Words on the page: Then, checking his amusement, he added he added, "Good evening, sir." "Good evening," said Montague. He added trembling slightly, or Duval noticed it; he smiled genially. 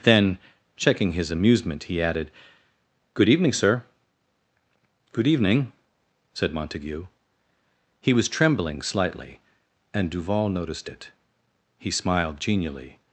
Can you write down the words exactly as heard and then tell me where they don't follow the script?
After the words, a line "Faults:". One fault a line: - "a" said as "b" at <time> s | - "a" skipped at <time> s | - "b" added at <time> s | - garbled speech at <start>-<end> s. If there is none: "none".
Then, checking his amusement, he added, "Good evening, sir." "Good evening," said Montague. He was trembling slightly, and Duval noticed it; he smiled genially.
Faults:
- "he added" skipped at 2.3 s
- "added" said as "was" at 8.1 s
- "or" said as "and" at 9.9 s